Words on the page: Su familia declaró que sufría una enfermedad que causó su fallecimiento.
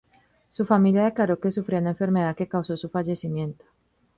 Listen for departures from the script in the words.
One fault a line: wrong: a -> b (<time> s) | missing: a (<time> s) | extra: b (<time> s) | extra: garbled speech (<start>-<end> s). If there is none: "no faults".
no faults